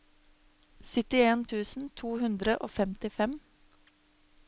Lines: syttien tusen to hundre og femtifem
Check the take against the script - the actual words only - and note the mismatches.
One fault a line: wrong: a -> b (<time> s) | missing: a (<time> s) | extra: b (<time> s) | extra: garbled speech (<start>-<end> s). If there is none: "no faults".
no faults